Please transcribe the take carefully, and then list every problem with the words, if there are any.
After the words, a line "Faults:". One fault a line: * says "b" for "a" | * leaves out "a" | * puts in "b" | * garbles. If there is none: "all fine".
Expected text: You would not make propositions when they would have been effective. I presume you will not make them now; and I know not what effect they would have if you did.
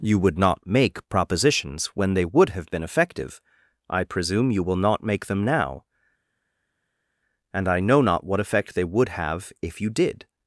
You would not make propositions when they would have been effective. I presume you will not make them now; and I know not what effect they would have if you did.
Faults:
all fine